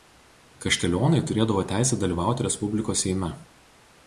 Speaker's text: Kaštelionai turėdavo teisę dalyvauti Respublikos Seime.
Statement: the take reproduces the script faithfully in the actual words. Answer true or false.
true